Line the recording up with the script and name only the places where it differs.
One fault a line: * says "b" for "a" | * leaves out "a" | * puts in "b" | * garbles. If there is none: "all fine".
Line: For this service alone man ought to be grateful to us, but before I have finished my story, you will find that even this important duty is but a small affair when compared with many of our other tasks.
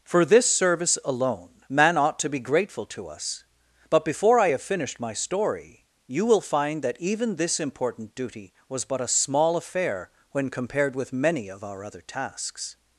* says "was" for "is"